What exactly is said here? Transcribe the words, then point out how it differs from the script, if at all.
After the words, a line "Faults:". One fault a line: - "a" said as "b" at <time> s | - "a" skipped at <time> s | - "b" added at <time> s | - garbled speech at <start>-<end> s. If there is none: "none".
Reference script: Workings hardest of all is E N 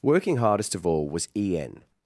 Working hardest of all was E N
Faults:
- "Workings" said as "Working" at 0.0 s
- "is" said as "was" at 1.1 s